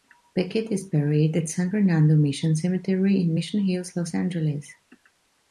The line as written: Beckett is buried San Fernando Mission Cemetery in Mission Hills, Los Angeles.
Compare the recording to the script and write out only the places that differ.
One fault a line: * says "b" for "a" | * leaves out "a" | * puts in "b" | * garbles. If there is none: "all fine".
* puts in "at"